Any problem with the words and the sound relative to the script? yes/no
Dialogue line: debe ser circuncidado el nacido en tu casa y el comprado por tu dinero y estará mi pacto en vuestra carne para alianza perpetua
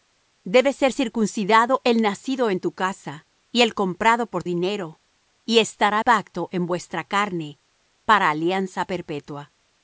yes